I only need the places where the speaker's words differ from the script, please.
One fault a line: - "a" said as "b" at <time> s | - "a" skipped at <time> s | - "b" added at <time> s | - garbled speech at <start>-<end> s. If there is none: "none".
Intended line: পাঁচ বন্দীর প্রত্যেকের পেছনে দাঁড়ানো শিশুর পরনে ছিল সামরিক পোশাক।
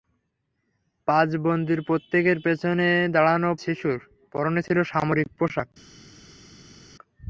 none